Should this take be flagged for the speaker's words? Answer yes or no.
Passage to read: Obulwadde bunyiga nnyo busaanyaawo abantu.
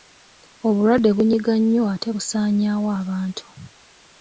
yes